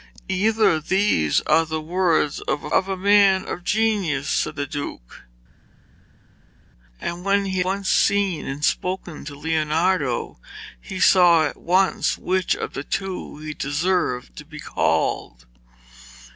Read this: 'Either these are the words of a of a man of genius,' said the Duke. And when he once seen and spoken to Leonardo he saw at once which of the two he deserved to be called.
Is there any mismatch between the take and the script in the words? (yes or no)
no